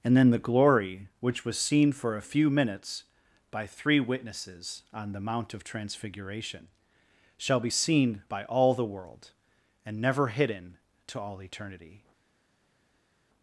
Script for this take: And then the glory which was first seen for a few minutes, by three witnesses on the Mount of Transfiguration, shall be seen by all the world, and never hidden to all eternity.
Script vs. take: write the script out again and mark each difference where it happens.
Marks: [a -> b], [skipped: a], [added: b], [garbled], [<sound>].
And then the glory which was [skipped: first] seen for a few minutes, by three witnesses on the Mount of Transfiguration, shall be seen by all the world, and never hidden to all eternity.